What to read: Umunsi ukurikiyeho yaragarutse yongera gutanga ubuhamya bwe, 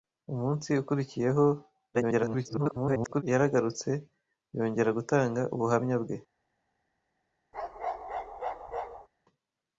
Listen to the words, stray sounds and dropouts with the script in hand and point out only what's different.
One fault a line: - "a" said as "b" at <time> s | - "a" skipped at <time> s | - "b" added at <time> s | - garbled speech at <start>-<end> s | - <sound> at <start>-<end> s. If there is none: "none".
- garbled speech at 1.9-3.2 s
- bark at 7.5-9.1 s